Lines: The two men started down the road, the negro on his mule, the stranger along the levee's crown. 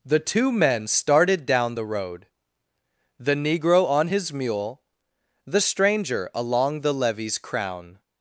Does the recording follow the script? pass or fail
pass